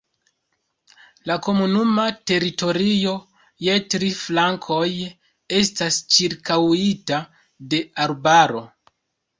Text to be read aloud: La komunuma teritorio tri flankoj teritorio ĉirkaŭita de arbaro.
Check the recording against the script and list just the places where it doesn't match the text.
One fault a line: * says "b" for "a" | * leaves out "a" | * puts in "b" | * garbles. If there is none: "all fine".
* puts in "je"
* says "estas" for "teritorio"